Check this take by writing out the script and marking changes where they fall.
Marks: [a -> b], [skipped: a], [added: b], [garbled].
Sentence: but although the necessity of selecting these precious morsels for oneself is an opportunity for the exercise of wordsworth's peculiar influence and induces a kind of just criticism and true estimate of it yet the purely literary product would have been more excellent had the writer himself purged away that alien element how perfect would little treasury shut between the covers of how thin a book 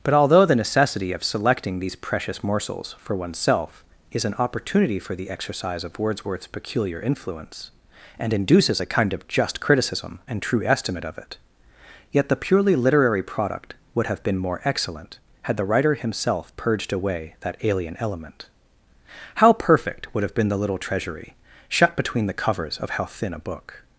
but although the necessity of selecting these precious morsels for oneself is an opportunity for the exercise of wordsworth's peculiar influence and induces a kind of just criticism and true estimate of it yet the purely literary product would have been more excellent had the writer himself purged away that alien element how perfect would [added: have been the] little treasury shut between the covers of how thin a book